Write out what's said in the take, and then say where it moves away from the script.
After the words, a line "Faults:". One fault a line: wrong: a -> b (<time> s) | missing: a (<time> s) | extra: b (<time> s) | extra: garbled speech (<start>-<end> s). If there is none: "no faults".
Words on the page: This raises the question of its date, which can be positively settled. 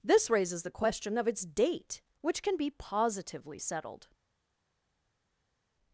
This raises the question of its date, which can be positively settled.
Faults:
no faults